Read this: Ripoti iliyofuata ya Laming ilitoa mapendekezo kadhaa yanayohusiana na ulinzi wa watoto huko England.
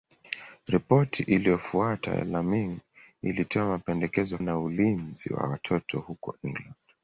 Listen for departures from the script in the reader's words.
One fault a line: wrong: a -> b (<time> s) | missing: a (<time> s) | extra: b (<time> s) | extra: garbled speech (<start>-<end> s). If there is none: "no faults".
missing: kadhaa yanayohusiana (4.4 s)